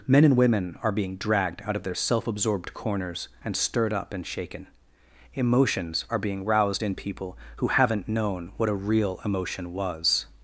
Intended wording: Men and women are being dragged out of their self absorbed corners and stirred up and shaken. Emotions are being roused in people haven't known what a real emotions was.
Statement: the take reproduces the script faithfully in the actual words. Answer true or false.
false